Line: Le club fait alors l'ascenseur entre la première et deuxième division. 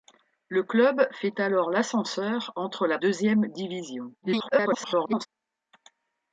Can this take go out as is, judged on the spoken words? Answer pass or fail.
fail